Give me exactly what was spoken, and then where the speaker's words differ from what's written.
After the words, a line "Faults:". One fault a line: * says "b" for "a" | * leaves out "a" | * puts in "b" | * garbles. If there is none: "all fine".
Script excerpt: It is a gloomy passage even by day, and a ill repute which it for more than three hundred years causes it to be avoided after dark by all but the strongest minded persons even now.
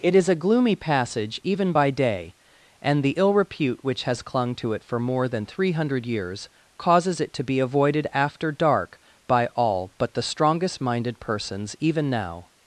It is a gloomy passage even by day, and the ill repute which has clung to it for more than three hundred years causes it to be avoided after dark by all but the strongest minded persons even now.
Faults:
* says "the" for "a"
* puts in "has clung to"